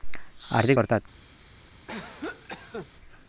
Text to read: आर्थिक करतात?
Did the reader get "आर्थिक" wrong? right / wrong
right